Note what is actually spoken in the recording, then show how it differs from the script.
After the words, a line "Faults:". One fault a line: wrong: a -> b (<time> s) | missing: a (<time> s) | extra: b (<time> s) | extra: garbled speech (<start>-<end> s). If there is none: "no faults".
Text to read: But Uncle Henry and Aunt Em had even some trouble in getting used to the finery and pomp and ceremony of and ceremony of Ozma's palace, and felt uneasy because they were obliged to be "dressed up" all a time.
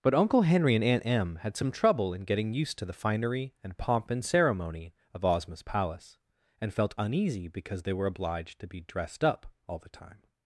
But Uncle Henry and Aunt Em had some trouble in getting used to the finery and pomp and ceremony of Ozma's palace, and felt uneasy because they were obliged to be "dressed up" all the time.
Faults:
missing: even (1.6 s)
missing: and ceremony of (5.2 s)
wrong: a -> the (9.8 s)